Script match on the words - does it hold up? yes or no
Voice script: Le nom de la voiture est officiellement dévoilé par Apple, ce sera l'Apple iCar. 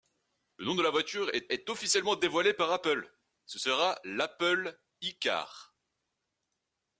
no